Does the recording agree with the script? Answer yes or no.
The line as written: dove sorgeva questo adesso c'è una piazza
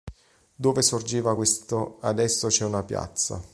yes